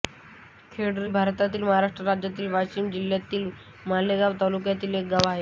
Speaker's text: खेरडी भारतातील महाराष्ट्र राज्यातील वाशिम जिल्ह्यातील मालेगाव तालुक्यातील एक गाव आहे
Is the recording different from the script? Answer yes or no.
no